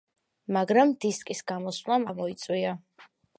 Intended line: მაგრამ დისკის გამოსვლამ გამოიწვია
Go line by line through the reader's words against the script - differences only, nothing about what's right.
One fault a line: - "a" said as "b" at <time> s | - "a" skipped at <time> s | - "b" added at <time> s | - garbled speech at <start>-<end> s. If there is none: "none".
none